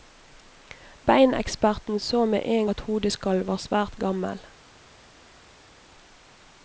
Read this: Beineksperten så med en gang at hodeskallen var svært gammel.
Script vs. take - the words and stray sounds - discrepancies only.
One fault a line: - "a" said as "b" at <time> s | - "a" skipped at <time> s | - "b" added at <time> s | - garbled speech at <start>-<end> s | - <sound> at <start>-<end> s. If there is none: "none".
- "gang" skipped at 2.7 s